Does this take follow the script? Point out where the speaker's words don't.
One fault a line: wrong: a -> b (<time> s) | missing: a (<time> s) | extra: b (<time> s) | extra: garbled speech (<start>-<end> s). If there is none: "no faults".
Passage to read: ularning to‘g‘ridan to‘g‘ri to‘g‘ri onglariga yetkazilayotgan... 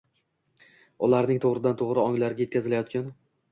missing: to‘g‘ri (2.0 s)